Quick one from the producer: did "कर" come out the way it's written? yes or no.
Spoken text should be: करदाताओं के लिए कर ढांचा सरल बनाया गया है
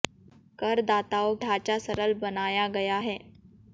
no